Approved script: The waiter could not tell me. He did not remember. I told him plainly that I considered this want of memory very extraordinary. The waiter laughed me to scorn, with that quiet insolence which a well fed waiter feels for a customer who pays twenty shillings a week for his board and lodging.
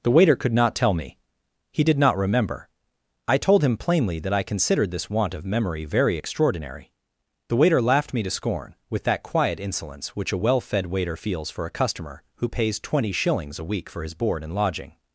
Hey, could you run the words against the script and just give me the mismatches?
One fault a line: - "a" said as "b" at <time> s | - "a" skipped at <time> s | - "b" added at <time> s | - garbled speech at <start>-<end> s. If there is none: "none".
none